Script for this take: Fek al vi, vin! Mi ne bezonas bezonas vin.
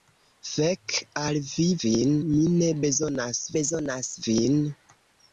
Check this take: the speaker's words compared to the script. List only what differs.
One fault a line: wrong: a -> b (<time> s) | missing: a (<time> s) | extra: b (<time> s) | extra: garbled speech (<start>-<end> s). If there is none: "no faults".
no faults